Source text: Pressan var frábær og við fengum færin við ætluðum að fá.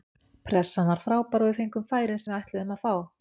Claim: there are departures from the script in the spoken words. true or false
false